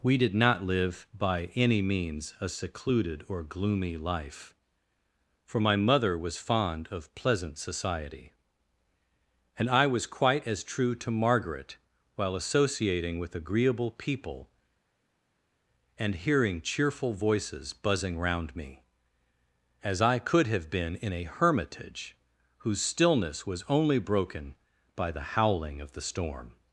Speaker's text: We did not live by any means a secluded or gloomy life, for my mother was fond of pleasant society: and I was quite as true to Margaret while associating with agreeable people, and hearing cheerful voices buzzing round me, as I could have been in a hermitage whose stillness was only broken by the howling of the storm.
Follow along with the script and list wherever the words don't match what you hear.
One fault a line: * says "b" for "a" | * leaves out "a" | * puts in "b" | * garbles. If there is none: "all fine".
all fine